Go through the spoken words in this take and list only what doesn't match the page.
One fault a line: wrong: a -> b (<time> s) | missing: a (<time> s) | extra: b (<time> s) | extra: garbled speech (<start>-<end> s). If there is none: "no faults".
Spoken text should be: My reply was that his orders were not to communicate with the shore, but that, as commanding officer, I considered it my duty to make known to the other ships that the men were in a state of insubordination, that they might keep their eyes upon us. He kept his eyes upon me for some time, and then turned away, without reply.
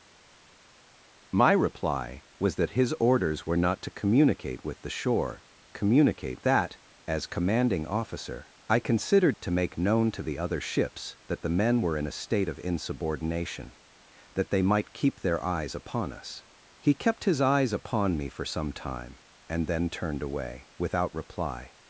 wrong: but -> communicate (5.7 s)
missing: it my duty (9.4 s)